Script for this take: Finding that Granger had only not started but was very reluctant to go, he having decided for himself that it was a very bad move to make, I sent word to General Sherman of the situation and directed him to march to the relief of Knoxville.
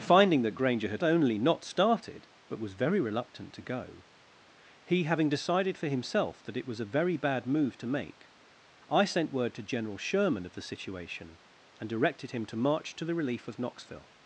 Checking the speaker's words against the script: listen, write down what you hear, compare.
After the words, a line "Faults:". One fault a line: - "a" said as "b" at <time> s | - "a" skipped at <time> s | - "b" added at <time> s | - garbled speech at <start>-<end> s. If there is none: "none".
Finding that Granger had only not started but was very reluctant to go, he having decided for himself that it was a very bad move to make, I sent word to General Sherman of the situation and directed him to march to the relief of Knoxville.
Faults:
none